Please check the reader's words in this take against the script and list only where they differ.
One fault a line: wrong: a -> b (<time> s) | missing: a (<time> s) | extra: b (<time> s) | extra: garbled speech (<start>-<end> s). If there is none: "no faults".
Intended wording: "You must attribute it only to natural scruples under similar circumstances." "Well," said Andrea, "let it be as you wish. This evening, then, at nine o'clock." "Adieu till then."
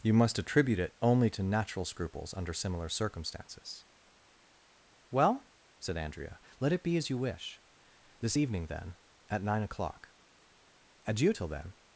no faults